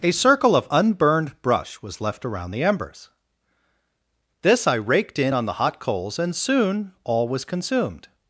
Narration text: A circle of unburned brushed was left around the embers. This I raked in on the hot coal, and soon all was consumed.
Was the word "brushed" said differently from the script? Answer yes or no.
yes